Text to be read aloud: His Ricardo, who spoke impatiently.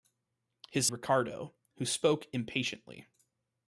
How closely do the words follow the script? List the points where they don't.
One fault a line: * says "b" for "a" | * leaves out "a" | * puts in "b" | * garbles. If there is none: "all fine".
all fine